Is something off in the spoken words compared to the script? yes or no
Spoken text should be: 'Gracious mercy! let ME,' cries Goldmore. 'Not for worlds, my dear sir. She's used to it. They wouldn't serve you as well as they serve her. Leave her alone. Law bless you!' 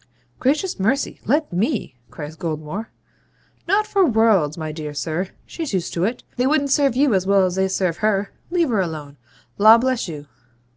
no